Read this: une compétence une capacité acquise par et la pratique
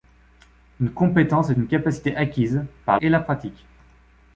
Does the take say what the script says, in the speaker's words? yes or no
yes